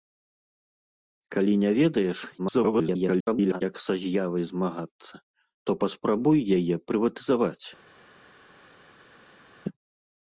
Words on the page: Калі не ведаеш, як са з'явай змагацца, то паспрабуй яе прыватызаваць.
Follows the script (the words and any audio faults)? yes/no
no